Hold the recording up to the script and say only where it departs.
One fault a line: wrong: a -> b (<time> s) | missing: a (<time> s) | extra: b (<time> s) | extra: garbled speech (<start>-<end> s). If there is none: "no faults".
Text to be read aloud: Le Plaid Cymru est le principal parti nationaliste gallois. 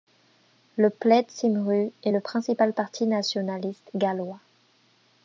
no faults